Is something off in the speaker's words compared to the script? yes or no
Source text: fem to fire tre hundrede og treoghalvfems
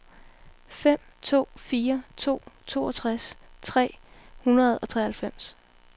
yes